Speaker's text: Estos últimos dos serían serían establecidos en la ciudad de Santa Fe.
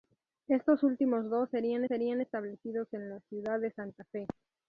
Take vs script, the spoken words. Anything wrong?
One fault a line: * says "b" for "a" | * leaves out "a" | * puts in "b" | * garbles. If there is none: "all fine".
all fine